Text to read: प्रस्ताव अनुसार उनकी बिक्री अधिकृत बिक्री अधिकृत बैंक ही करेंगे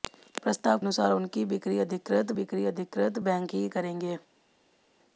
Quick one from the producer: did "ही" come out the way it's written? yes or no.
yes